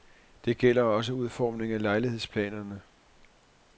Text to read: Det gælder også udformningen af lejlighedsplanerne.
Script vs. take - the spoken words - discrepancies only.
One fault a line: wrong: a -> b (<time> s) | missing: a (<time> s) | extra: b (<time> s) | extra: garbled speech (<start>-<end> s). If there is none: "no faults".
no faults